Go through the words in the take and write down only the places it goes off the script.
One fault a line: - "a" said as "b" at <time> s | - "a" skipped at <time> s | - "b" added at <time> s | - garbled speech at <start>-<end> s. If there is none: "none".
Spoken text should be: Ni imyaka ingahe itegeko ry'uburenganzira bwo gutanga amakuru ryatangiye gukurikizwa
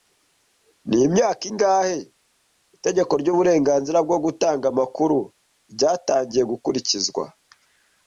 none